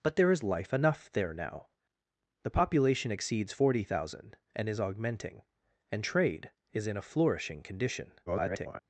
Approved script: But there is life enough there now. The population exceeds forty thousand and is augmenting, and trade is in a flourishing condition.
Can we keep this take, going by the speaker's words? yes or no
no